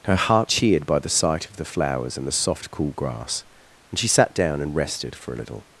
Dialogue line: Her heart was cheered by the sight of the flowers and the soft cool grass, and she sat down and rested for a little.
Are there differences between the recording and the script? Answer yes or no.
yes